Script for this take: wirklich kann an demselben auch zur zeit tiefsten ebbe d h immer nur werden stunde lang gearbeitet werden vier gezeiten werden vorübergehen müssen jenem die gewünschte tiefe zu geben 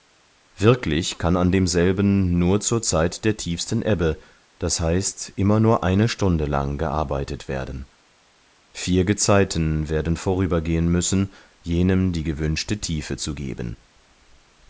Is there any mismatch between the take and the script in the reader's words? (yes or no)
yes